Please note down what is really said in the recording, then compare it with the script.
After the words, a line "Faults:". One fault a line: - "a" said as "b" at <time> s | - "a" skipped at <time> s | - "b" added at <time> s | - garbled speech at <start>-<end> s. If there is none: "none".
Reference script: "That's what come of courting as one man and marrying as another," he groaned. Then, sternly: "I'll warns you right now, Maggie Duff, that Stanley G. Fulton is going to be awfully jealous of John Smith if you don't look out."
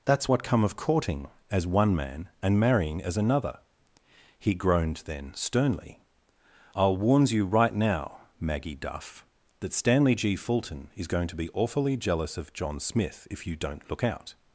"That's what come of courting as one man and marrying as another," he groaned. Then, sternly: "I'll warns you right now, Maggie Duff, that Stanley G. Fulton is going to be awfully jealous of John Smith if you don't look out."
Faults:
none